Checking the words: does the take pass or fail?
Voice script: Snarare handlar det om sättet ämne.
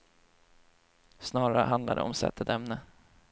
pass